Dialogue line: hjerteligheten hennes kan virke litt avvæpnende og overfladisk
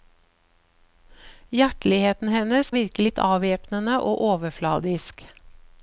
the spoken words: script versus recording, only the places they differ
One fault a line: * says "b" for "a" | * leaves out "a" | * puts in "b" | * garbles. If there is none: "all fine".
* leaves out "kan"